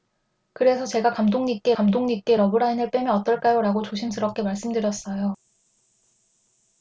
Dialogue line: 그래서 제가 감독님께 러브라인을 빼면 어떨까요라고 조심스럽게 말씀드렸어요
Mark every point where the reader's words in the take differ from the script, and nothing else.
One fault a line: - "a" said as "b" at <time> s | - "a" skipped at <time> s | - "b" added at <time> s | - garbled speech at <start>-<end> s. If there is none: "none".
- "감독님께" added at 1.7 s